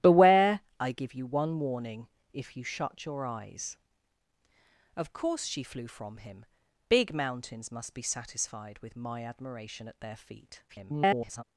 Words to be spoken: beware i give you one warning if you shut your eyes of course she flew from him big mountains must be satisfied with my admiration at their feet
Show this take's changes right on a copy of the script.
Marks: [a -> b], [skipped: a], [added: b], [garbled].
beware i give you one warning if you shut your eyes of course she flew from him big mountains must be satisfied with my admiration at their feet [garbled]